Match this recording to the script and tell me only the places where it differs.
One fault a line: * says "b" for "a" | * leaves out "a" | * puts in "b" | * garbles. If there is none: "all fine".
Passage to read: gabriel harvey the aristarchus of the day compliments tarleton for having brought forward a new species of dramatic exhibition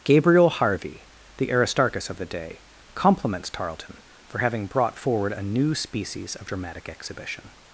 all fine